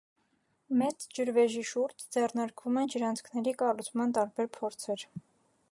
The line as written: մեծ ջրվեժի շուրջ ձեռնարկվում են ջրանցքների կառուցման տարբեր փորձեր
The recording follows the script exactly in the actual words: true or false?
true